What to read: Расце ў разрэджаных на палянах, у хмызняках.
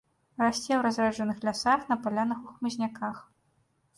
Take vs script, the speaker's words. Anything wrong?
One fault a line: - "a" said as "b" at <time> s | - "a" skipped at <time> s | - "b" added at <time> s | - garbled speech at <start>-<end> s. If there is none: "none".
- "лясах" added at 1.5 s